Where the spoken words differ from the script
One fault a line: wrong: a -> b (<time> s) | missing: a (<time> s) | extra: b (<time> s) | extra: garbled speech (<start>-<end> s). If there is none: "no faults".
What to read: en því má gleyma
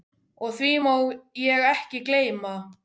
wrong: en -> og (0.5 s)
extra: ég ekki (1.5 s)